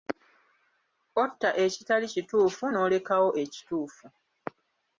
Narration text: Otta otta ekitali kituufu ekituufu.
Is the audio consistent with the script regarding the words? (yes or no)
no